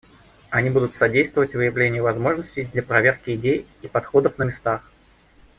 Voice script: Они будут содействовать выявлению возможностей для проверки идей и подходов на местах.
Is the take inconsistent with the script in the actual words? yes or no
no